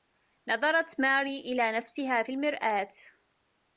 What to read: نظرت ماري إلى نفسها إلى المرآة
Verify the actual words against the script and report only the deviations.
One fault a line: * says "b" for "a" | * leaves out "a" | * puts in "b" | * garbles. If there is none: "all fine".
* says "في" for "إلى"